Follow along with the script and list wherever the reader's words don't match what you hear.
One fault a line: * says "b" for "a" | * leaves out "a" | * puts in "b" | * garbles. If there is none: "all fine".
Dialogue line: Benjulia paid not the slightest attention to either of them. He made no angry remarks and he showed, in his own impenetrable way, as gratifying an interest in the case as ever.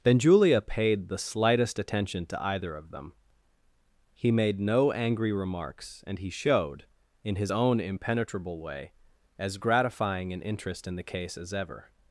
* leaves out "not"